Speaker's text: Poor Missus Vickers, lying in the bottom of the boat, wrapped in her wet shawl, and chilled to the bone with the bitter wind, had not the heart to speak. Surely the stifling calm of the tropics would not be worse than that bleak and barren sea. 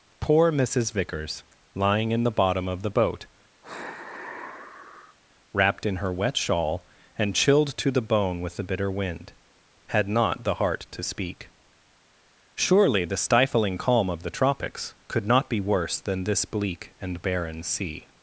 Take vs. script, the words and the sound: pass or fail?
fail